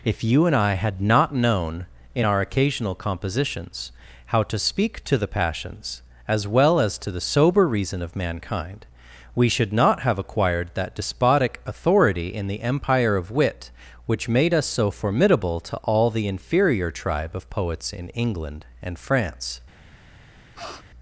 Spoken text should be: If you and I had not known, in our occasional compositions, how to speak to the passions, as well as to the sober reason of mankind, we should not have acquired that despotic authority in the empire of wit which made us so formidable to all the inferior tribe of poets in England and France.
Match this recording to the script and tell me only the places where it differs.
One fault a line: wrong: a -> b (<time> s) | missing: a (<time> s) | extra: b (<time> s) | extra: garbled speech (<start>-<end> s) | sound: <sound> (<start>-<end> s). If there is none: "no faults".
sound: sniff (20.5-20.8 s)